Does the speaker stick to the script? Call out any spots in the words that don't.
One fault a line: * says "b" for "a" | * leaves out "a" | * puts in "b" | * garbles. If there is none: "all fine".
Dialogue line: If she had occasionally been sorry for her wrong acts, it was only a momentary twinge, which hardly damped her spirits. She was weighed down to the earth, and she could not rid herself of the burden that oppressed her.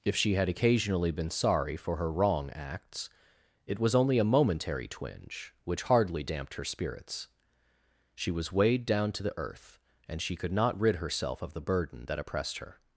all fine